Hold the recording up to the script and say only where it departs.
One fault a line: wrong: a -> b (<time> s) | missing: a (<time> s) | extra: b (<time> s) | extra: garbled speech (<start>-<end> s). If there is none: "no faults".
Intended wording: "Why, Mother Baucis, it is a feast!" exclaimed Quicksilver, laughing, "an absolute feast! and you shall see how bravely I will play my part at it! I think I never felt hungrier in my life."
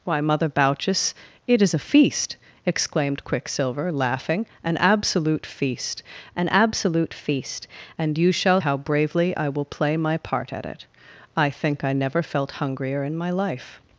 extra: an absolute feast (6.4 s)
missing: see (8.6 s)